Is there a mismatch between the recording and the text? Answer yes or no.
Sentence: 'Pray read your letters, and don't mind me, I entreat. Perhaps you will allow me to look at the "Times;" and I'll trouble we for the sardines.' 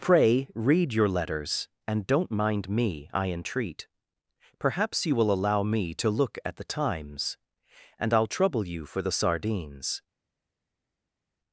yes